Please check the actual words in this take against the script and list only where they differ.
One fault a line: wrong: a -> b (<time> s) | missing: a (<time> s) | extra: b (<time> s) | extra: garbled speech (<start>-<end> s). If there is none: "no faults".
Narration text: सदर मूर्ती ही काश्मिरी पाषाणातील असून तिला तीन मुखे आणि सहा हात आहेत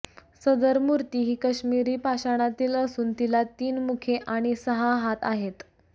no faults